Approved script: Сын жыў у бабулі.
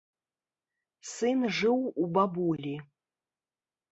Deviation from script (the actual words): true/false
false